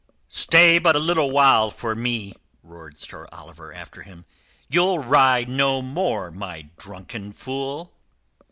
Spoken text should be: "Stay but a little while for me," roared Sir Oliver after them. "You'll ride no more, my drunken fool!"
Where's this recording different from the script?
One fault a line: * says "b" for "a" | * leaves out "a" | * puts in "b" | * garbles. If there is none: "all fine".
* says "him" for "them"